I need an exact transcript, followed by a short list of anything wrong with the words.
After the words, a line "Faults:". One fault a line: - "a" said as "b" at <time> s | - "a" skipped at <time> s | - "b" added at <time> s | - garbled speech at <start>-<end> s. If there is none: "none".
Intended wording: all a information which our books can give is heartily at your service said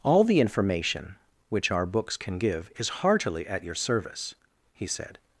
all the information which our books can give is heartily at your service he said
Faults:
- "a" said as "the" at 0.2 s
- "he" added at 4.7 s